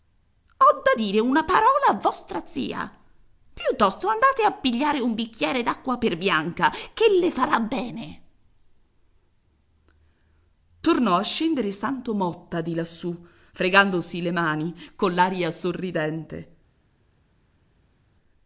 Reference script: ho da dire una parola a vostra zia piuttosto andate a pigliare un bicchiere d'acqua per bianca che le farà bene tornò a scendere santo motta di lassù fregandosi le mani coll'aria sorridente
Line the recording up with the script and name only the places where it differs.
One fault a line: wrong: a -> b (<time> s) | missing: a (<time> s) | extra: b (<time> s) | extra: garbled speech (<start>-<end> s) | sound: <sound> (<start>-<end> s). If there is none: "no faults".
no faults